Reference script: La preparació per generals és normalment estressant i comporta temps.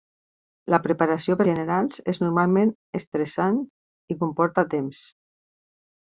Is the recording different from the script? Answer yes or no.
no